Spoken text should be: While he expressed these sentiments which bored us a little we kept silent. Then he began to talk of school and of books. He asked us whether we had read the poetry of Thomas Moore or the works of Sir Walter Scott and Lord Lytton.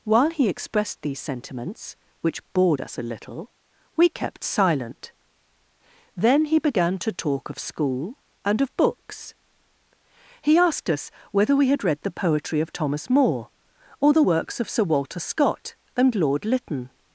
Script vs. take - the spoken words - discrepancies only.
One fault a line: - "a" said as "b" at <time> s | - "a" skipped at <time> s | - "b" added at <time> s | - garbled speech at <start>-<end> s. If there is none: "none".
none